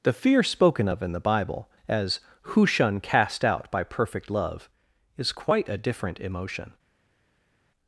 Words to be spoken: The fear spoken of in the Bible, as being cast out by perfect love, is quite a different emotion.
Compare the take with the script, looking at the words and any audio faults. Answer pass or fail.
fail